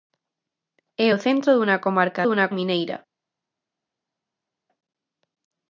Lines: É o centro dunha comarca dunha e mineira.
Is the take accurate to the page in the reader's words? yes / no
yes